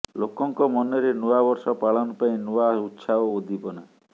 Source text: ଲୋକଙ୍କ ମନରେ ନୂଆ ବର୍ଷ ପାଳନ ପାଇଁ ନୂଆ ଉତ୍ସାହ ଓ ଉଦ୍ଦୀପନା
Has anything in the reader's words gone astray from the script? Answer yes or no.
no